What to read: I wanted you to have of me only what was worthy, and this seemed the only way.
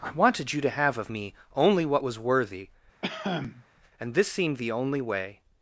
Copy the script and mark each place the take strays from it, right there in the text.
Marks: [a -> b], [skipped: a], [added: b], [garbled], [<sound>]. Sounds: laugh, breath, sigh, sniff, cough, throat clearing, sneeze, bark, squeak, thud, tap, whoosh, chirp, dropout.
I wanted you to have of me only what was worthy, [cough] and this seemed the only way.